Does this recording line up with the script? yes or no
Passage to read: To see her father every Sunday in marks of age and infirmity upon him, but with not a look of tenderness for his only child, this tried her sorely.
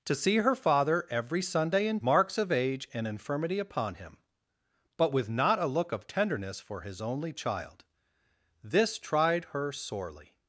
yes